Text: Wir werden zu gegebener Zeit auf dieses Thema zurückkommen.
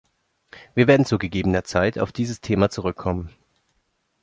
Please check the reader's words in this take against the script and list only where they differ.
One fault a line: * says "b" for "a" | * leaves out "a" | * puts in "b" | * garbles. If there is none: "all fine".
all fine